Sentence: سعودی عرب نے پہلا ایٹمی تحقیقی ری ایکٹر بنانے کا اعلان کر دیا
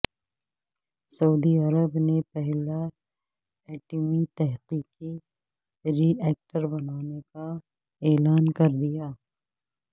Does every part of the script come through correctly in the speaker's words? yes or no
yes